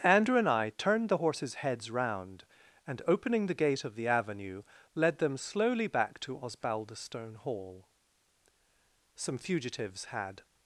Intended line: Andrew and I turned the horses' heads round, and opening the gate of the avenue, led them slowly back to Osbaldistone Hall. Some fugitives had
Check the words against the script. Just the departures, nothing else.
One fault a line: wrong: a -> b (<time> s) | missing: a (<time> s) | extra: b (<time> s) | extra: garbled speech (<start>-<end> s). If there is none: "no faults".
no faults